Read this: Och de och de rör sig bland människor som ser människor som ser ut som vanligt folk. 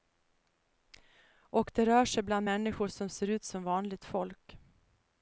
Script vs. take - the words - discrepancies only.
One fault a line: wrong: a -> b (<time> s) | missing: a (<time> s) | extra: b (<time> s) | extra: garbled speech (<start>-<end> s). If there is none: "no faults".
missing: och de (1.9 s)
missing: människor som ser (3.3 s)